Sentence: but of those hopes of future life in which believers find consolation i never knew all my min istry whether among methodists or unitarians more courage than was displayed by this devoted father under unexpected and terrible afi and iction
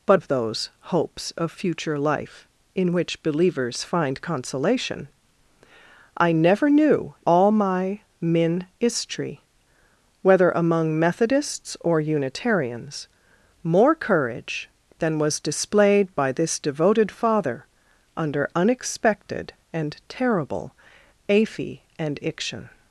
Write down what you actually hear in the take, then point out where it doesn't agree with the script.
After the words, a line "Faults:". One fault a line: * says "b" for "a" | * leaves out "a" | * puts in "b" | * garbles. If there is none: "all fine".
but of those hopes of future life in which believers find consolation i never knew all my min istry whether among methodists or unitarians more courage than was displayed by this devoted father under unexpected and terrible afi and iction
Faults:
all fine